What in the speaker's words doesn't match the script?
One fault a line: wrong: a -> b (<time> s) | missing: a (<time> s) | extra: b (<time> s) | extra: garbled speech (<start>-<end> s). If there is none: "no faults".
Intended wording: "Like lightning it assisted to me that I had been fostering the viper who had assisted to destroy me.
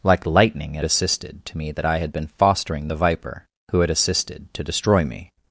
no faults